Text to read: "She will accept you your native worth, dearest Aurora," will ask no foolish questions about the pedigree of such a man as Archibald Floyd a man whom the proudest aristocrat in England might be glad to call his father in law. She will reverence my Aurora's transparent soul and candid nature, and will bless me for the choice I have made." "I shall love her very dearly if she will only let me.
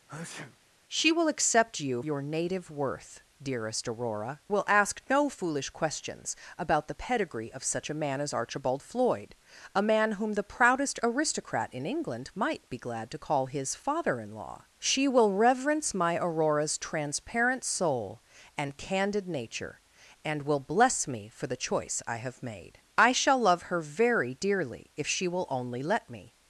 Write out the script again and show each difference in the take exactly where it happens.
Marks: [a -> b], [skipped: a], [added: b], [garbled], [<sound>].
[sneeze] "She will accept you your native worth, dearest Aurora," will ask no foolish questions about the pedigree of such a man as Archibald Floyd a man whom the proudest aristocrat in England might be glad to call his father in law. She will reverence my Aurora's transparent soul and candid nature, and will bless me for the choice I have made." "I shall love her very dearly if she will only let me.